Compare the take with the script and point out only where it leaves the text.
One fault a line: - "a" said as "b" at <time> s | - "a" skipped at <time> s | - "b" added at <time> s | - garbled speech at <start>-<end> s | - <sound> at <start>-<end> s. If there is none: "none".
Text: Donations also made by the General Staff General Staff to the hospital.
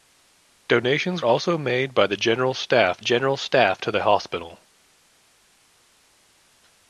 none